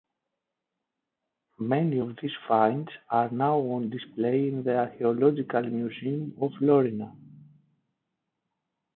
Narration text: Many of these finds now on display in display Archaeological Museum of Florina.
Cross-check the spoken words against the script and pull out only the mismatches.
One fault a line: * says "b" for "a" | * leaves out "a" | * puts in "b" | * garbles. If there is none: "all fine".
* puts in "are"
* says "the" for "display"